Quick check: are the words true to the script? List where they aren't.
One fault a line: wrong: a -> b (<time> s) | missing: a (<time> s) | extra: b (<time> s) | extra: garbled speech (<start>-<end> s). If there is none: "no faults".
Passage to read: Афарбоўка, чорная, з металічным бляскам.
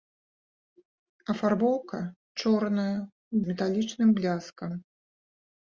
no faults